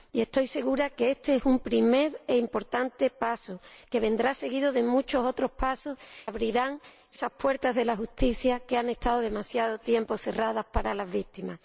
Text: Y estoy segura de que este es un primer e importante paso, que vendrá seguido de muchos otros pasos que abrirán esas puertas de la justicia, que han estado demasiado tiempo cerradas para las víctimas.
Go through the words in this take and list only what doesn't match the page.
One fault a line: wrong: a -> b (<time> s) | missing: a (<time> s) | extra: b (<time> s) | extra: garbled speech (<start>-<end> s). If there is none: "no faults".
missing: que (6.0 s)